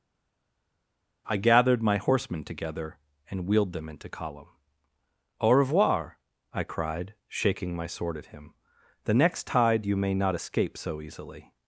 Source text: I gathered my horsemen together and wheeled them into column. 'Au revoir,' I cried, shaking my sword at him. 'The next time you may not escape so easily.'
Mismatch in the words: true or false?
true